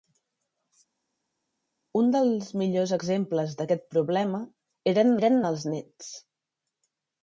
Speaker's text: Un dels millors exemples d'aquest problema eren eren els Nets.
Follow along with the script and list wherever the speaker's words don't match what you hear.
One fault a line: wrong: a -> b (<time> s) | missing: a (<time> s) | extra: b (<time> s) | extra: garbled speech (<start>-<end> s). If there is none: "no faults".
no faults